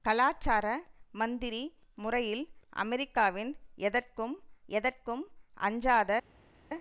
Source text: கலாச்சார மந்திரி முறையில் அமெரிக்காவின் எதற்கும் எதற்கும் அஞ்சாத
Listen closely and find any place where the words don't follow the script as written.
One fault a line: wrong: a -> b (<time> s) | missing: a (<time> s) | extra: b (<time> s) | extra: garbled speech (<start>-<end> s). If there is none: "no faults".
no faults